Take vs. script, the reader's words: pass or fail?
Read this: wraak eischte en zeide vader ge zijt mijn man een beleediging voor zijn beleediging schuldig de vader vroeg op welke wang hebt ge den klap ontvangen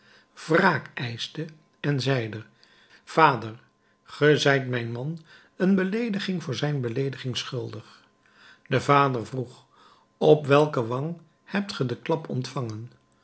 pass